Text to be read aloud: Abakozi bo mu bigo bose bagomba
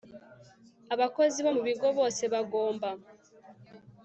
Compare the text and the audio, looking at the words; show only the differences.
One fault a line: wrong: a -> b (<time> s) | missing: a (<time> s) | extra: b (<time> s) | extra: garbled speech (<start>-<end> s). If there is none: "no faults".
no faults